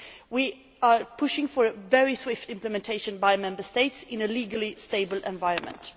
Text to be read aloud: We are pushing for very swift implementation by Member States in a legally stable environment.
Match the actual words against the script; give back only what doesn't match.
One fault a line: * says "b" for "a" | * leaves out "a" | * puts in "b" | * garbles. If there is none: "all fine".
all fine